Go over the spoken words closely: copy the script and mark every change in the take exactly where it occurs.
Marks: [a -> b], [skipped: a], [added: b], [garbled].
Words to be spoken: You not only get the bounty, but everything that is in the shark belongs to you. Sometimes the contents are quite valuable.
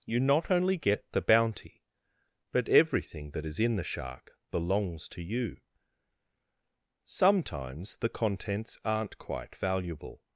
You not only get the bounty, but everything that is in the shark belongs to you. Sometimes the contents [are -> aren't] quite valuable.